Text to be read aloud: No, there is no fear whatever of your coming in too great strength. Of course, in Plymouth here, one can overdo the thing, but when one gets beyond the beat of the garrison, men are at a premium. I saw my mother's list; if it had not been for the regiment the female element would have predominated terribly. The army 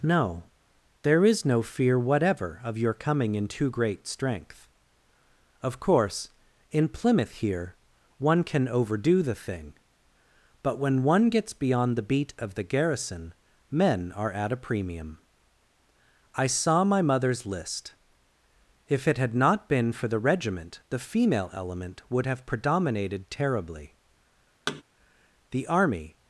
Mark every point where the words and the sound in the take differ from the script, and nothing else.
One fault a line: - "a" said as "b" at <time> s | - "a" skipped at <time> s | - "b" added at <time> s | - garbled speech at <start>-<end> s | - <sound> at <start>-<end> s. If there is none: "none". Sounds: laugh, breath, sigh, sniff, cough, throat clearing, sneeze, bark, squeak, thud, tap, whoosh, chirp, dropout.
- thud at 24.7-24.8 s